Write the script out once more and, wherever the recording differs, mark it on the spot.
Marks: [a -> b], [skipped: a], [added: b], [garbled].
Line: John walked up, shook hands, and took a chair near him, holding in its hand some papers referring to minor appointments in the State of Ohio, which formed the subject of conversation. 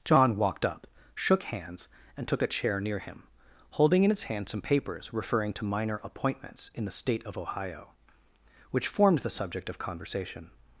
John walked up, shook hands, and took a chair near him, holding in its hand some papers referring to minor appointments in the State of Ohio, which formed the subject of conversation.